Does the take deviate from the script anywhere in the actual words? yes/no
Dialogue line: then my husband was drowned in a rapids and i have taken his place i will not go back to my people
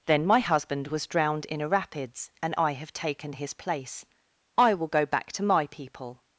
yes